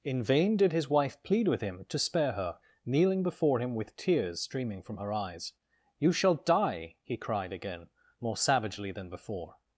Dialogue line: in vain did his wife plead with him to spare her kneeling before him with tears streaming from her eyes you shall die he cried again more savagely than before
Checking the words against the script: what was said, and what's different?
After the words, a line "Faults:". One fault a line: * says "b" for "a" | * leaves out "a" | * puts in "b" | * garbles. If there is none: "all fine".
in vain did his wife plead with him to spare her kneeling before him with tears streaming from her eyes you shall die he cried again more savagely than before
Faults:
all fine